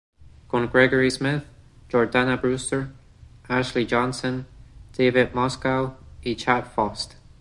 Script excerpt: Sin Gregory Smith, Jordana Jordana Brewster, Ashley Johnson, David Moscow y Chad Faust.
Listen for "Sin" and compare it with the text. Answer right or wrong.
wrong